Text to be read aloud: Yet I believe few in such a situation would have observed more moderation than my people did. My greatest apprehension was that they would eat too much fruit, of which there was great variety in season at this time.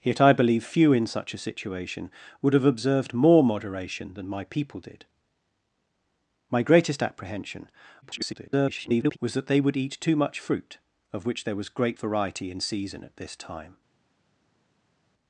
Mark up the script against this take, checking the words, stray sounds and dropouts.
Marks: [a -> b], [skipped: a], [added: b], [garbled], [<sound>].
Yet I believe few in such a situation would have observed more moderation than my people did. My greatest apprehension [garbled] was that they would eat too much fruit, of which there was great variety in season at this time.